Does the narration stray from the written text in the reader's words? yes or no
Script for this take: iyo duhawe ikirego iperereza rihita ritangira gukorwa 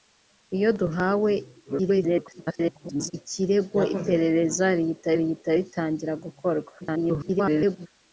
yes